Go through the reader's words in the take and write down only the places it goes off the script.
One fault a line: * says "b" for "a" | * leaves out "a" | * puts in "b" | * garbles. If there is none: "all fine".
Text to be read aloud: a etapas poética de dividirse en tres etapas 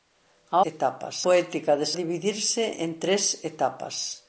all fine